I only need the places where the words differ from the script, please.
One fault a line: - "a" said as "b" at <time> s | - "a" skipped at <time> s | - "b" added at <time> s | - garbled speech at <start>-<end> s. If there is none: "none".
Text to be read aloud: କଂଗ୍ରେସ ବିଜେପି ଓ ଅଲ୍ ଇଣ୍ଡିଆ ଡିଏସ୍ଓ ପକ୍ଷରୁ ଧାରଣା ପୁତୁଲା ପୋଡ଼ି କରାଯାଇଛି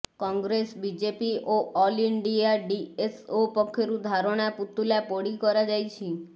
none